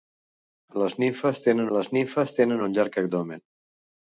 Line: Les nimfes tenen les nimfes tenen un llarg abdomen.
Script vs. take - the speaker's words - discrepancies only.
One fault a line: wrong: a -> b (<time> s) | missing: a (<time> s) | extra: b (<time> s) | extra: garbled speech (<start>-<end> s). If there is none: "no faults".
no faults